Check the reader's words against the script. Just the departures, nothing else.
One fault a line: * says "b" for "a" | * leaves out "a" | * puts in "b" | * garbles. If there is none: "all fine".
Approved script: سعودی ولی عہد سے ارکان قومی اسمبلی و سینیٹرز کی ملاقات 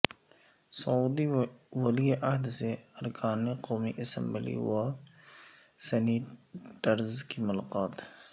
all fine